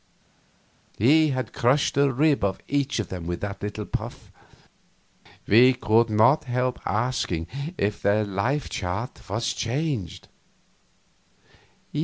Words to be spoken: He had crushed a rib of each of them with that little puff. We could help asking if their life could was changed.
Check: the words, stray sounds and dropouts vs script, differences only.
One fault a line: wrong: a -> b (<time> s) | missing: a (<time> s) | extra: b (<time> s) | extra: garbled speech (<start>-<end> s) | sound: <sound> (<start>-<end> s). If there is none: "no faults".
extra: not (6.1 s)
wrong: could -> chart (8.7 s)